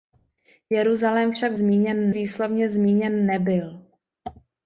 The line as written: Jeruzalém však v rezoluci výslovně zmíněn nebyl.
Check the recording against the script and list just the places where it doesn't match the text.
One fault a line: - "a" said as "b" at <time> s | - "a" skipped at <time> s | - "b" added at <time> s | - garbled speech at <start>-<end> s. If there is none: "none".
- "rezoluci" said as "zmíněn" at 1.5 s